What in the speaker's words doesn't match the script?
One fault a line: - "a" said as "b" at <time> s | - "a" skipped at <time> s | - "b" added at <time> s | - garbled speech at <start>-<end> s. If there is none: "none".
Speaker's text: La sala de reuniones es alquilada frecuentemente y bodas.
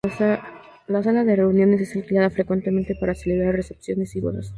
- "para celebrar recepciones" added at 2.9 s